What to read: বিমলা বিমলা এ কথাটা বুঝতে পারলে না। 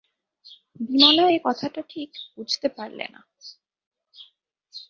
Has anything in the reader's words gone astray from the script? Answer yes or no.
yes